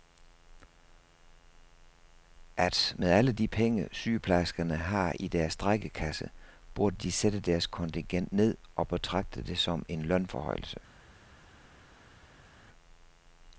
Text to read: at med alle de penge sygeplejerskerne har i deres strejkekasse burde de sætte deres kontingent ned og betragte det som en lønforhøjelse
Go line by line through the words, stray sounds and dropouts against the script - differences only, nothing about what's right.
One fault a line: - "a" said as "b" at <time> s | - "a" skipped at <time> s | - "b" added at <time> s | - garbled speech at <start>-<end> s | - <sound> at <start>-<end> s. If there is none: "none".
none